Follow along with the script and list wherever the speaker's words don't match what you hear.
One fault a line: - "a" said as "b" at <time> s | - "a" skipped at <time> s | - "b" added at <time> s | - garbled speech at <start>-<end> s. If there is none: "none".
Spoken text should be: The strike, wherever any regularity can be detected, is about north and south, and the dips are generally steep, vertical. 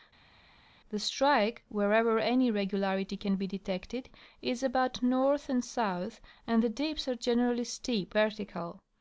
none